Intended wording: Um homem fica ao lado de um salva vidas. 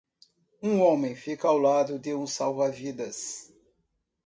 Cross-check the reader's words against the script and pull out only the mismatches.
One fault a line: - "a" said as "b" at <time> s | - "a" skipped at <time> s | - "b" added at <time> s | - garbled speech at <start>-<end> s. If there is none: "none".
none